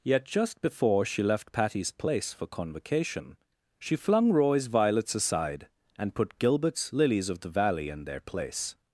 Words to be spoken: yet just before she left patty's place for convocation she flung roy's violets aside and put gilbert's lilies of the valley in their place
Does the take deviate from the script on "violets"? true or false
false